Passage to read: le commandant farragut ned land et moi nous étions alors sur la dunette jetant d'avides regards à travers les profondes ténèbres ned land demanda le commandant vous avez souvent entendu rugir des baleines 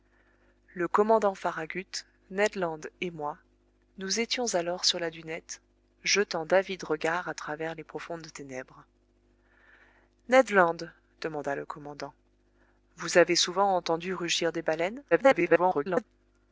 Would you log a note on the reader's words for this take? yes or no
yes